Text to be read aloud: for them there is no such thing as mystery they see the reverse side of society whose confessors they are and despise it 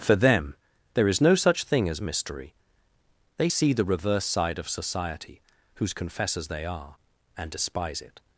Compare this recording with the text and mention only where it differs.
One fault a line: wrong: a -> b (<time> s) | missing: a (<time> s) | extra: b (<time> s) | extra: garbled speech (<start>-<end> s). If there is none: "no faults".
no faults